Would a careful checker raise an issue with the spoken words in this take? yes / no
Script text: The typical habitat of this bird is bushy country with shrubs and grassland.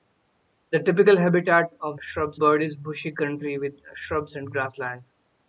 yes